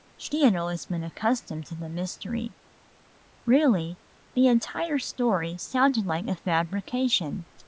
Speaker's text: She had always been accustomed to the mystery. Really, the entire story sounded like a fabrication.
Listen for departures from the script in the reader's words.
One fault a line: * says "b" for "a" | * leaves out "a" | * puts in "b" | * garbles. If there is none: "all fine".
all fine